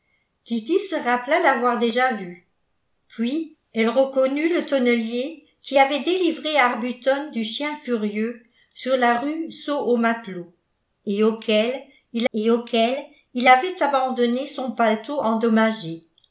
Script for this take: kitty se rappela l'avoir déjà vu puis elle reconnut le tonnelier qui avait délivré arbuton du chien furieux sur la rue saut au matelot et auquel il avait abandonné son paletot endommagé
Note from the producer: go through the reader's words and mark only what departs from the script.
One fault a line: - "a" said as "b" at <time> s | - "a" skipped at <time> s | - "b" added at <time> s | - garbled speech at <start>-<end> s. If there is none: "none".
- "et auquel il" added at 12.3 s